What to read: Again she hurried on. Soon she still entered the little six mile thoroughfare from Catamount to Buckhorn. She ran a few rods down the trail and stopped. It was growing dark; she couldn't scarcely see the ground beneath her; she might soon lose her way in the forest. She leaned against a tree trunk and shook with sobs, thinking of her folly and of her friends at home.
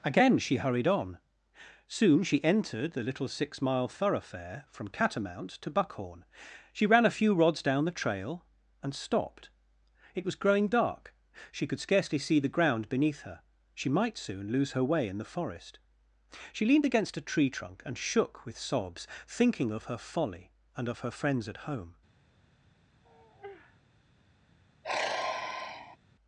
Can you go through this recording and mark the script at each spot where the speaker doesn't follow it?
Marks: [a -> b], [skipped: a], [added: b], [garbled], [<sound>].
Again she hurried on. Soon she [skipped: still] entered the little six mile thoroughfare from Catamount to Buckhorn. She ran a few rods down the trail and stopped. It was growing dark; she [couldn't -> could] scarcely see the ground beneath her; she might soon lose her way in the forest. She leaned against a tree trunk and shook with sobs, thinking of her folly and of her friends at home. [sigh] [sigh]